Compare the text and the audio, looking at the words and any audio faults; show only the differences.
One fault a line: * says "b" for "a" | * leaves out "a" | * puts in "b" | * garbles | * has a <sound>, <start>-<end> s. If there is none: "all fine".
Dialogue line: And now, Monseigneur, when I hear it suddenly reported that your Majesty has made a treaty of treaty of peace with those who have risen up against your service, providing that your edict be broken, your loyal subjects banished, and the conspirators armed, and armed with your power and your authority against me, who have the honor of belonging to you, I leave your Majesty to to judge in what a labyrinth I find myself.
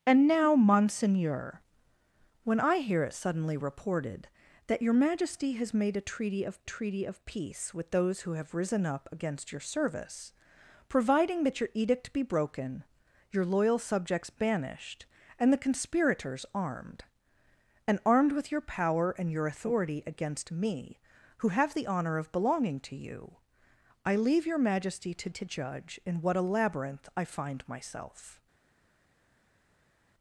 all fine